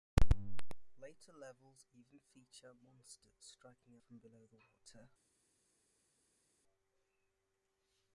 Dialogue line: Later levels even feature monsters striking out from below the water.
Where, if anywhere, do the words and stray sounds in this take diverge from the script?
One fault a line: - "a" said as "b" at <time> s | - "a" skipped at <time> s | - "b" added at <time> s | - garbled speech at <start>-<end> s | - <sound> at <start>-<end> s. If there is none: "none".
- "out" skipped at 4.0 s